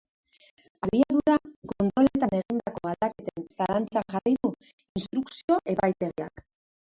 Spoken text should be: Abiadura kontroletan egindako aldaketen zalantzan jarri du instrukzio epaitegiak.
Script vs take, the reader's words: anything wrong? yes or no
no